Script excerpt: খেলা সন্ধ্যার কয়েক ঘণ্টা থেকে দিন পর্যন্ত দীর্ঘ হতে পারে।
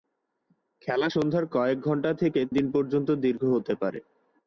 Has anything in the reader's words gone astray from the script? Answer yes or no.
no